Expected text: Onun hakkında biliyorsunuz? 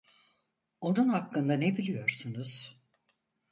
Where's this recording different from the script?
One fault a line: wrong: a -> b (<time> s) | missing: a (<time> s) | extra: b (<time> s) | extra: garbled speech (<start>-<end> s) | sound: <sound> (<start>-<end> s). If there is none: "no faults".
extra: ne (1.5 s)